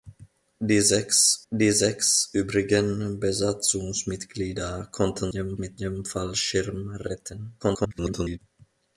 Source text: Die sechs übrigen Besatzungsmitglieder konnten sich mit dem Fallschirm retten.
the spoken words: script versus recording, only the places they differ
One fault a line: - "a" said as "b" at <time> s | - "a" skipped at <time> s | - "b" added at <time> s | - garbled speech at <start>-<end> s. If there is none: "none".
- "die sechs" added at 1.5 s
- "sich" said as "dem" at 5.3 s
- garbled speech at 7.6-8.4 s